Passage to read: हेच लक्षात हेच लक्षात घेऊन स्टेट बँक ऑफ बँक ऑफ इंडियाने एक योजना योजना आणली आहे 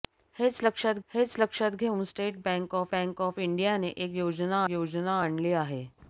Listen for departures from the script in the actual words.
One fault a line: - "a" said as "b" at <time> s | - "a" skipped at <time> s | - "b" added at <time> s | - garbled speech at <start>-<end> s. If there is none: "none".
none